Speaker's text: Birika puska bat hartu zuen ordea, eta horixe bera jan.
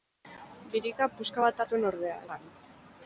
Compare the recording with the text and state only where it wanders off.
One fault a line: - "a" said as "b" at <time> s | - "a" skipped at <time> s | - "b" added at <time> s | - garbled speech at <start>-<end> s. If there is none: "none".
- "hartu" skipped at 1.6 s
- "eta horixe bera" skipped at 2.2 s